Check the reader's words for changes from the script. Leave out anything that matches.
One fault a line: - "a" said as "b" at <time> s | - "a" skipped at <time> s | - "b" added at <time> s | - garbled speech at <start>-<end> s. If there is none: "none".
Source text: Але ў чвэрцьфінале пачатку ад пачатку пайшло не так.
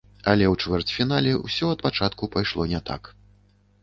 - "пачатку" said as "ўсё" at 1.4 s